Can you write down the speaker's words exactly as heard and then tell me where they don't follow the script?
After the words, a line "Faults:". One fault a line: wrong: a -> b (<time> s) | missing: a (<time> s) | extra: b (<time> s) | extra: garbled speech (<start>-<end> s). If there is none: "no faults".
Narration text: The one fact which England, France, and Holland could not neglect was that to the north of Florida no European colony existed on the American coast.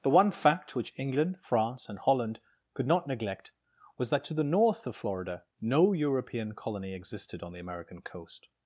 The one fact which England, France, and Holland could not neglect was that to the north of Florida no European colony existed on the American coast.
Faults:
no faults